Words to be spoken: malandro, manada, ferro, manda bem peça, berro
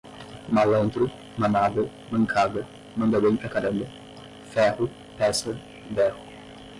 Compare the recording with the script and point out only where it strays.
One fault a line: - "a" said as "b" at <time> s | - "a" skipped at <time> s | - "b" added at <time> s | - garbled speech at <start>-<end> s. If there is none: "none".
- "ferro" said as "mancada" at 2.1 s
- "pra caramba ferro" added at 3.4 s